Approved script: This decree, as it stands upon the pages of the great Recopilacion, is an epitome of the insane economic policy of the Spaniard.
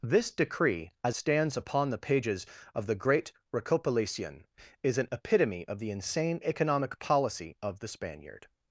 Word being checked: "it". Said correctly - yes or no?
no